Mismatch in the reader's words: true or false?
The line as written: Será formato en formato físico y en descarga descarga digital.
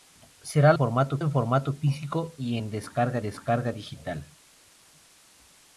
false